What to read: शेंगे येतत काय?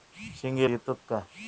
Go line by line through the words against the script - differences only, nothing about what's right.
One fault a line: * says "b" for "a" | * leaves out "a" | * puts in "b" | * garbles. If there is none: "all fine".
all fine